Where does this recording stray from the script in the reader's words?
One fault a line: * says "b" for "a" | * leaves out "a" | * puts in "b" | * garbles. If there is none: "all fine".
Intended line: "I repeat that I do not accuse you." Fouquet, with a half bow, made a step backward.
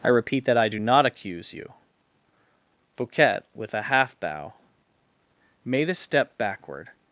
all fine